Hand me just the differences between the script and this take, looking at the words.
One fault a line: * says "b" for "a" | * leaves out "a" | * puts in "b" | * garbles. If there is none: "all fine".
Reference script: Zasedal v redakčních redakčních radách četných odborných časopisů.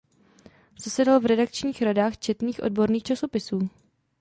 * leaves out "redakčních"